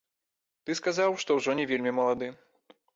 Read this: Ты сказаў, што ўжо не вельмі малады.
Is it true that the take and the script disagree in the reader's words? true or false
false